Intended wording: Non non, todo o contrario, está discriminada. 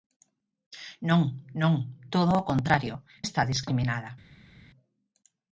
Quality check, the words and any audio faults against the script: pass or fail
pass